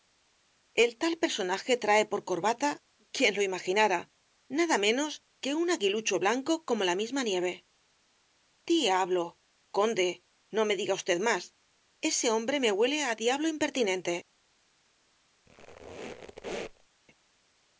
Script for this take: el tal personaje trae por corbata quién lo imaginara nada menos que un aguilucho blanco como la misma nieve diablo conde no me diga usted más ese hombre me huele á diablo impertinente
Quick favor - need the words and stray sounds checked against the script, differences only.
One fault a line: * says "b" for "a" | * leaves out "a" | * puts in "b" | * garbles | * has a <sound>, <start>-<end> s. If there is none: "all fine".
* has a squeak, 15.5-16.9 s